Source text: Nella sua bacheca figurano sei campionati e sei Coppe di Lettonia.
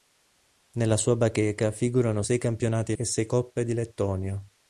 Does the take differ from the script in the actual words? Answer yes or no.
no